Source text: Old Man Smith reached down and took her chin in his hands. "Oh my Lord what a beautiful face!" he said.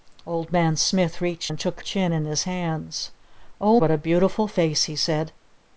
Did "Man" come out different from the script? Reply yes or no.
no